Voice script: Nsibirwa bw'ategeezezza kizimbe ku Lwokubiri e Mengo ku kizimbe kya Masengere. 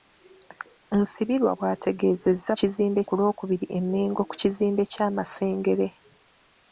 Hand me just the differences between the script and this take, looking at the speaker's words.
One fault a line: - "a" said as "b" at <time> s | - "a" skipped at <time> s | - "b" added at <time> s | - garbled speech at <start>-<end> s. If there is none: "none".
none